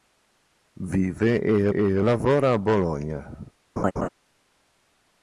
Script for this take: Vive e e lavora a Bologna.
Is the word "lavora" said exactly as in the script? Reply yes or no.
yes